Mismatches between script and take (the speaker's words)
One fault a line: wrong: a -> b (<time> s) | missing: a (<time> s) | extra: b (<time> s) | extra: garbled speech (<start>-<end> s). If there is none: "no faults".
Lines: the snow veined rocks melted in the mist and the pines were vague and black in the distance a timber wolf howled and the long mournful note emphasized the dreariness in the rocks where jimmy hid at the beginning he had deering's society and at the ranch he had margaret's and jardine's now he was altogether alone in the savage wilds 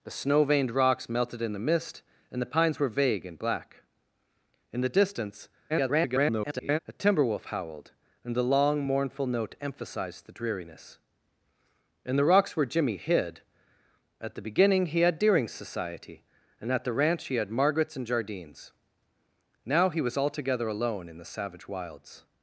extra: garbled speech (5.7-6.8 s)